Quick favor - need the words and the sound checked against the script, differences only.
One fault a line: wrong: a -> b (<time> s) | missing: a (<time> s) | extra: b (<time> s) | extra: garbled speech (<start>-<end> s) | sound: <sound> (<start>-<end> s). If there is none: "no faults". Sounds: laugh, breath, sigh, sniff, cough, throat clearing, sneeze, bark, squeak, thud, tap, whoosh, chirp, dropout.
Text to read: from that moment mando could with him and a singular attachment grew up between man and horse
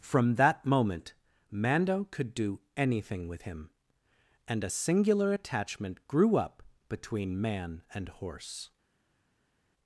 extra: do anything (2.3 s)